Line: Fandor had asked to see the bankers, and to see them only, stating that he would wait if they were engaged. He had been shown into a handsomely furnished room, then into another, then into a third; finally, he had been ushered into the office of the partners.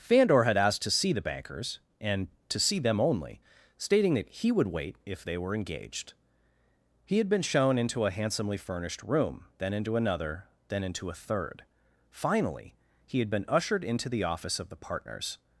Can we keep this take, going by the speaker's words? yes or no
yes